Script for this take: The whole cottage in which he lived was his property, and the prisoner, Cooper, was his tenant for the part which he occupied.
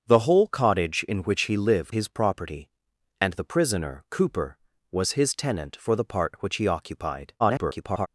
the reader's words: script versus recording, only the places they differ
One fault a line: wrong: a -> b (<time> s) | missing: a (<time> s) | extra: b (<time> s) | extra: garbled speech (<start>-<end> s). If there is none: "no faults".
missing: was (1.9 s)
extra: garbled speech (7.4-8.1 s)